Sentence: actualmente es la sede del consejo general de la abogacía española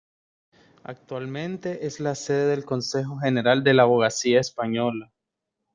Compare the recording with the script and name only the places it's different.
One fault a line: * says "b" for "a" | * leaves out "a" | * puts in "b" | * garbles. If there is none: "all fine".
all fine